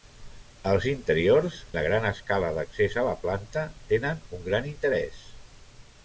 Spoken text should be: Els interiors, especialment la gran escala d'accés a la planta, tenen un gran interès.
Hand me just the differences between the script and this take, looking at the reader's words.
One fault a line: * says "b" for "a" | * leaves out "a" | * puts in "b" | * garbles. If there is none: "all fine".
* leaves out "especialment"